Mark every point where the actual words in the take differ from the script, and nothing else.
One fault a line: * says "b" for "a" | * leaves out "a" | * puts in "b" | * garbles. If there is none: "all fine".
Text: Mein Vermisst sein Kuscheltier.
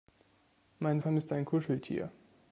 all fine